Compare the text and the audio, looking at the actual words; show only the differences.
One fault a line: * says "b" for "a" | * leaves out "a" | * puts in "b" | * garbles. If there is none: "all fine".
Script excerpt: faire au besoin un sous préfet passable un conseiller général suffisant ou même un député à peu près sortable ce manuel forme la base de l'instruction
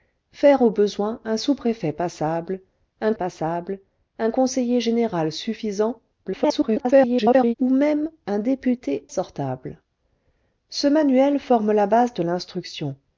* puts in "passable un"
* garbles
* leaves out "à peu près"